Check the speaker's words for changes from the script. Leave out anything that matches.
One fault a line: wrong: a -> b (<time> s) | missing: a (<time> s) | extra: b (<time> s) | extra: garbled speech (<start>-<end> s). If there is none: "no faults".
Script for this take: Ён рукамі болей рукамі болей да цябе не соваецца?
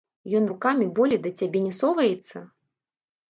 missing: рукамі болей (1.2 s)